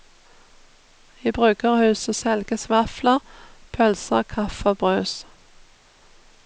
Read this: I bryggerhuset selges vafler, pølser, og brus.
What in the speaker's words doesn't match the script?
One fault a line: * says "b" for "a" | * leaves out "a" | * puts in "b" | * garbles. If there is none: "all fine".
* puts in "kaffe"